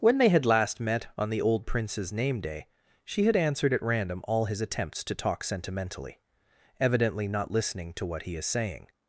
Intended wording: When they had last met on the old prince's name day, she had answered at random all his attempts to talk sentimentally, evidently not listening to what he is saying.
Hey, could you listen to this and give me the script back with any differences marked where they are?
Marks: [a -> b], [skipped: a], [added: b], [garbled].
When they had last met on the old prince's name day, she had answered at random all his attempts to talk sentimentally, evidently not listening to what he is saying.